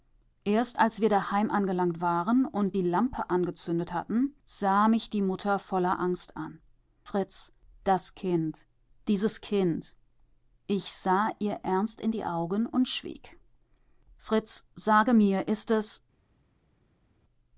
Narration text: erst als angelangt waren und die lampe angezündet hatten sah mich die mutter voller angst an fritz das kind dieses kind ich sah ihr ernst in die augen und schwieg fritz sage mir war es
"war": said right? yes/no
no